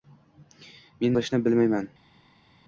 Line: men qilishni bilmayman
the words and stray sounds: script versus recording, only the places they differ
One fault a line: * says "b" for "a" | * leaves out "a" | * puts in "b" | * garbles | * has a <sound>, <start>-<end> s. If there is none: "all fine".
all fine